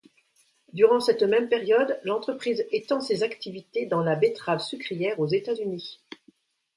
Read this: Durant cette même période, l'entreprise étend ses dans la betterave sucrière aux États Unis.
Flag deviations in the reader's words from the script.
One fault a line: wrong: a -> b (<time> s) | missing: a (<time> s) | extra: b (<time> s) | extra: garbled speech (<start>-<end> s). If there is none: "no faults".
extra: activités (3.2 s)